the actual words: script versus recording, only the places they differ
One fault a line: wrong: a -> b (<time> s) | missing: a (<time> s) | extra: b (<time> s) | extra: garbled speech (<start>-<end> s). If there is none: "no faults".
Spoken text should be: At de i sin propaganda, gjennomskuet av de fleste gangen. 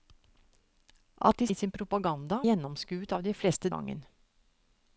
no faults